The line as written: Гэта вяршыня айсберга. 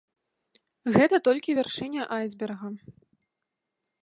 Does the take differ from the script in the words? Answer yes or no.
yes